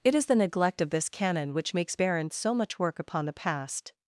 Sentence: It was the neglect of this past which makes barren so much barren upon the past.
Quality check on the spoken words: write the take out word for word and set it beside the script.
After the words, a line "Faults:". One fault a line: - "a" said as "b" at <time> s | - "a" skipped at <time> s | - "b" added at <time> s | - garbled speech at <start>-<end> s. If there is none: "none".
It is the neglect of this canon which makes barren so much work upon the past.
Faults:
- "was" said as "is" at 0.1 s
- "past" said as "canon" at 1.1 s
- "barren" said as "work" at 2.8 s